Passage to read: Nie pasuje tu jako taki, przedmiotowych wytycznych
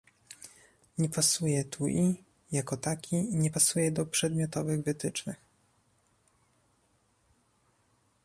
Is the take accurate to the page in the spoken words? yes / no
no